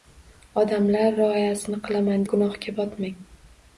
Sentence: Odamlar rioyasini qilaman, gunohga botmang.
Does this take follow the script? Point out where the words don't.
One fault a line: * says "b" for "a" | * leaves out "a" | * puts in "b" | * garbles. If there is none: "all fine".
all fine